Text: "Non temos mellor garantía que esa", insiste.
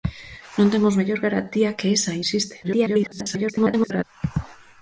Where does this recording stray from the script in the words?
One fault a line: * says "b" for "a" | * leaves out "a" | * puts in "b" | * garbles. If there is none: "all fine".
* garbles